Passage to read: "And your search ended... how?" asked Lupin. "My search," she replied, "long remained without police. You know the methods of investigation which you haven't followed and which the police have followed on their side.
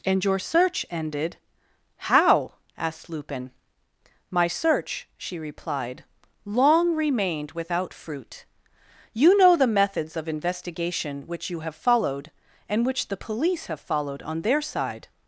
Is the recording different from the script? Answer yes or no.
yes